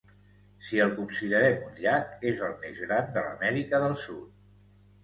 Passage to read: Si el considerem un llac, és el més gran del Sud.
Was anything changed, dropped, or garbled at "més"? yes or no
no